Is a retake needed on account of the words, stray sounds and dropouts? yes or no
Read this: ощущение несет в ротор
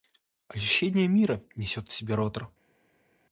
yes